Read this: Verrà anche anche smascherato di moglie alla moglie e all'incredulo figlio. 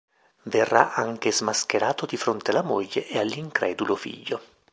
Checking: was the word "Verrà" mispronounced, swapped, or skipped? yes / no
no